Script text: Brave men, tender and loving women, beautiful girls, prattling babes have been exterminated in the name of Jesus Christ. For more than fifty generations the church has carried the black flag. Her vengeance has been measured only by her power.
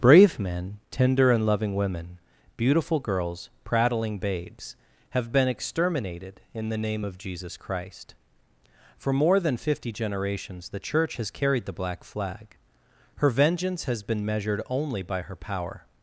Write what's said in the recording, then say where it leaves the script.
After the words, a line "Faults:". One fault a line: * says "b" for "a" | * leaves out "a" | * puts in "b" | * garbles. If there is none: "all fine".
Brave men, tender and loving women, beautiful girls, prattling babes have been exterminated in the name of Jesus Christ. For more than fifty generations the church has carried the black flag. Her vengeance has been measured only by her power.
Faults:
all fine